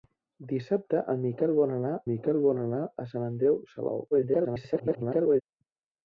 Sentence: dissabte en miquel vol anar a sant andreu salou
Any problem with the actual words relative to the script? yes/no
yes